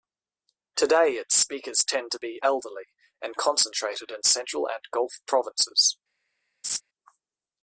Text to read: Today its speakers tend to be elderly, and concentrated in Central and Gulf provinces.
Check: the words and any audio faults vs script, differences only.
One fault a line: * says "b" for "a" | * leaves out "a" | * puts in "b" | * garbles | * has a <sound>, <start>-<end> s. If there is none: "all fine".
* has a laugh, 6.6-6.8 s